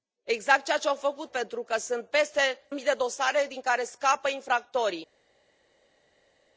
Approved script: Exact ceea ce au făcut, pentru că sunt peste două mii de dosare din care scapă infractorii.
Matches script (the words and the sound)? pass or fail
fail